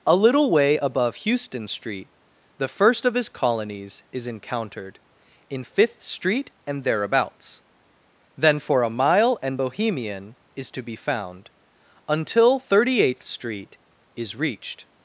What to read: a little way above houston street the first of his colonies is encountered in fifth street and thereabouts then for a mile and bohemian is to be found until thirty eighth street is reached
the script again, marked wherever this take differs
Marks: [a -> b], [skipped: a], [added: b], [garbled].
a little way above houston street the first of his colonies is encountered in fifth street and thereabouts then for a mile and bohemian is to be found until thirty eighth street is reached